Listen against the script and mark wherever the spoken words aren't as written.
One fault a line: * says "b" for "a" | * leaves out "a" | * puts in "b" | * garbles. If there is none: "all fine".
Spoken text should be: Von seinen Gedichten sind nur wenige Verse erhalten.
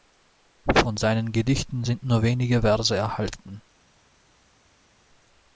all fine